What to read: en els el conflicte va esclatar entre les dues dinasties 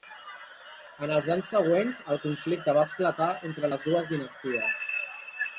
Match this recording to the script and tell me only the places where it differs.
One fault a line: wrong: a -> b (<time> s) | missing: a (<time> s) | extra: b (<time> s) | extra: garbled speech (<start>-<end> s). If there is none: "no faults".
extra: anys següents (1.4 s)